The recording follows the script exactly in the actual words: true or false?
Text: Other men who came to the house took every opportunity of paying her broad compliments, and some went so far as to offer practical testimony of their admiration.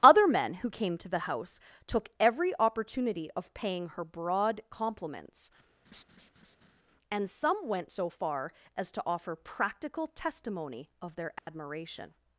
true